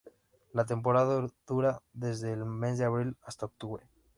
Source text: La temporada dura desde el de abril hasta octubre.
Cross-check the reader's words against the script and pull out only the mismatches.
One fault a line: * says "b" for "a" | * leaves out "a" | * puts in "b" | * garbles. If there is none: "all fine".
* puts in "mes"